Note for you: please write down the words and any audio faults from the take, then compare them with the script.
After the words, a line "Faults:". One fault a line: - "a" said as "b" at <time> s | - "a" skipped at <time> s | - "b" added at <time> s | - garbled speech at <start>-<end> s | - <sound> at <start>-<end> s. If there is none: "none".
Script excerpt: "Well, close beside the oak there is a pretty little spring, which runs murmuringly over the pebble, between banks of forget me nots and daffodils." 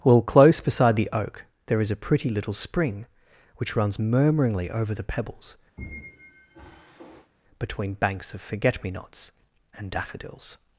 "Well, close beside the oak there is a pretty little spring, which runs murmuringly over the pebbles, between banks of forget me nots and daffodils."
Faults:
- "pebble" said as "pebbles" at 5.0 s
- squeak at 5.8-7.3 s